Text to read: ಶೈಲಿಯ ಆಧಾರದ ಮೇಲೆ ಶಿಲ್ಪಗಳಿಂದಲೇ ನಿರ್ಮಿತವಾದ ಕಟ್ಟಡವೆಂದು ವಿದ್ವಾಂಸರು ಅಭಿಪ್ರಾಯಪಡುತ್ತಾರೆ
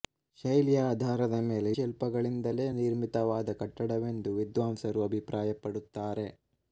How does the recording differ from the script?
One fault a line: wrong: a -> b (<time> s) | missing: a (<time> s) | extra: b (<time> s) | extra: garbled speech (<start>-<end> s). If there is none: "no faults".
no faults